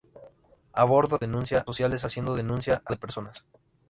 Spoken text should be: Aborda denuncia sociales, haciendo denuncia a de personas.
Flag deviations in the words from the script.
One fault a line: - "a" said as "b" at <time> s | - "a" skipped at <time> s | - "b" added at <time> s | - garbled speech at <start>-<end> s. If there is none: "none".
none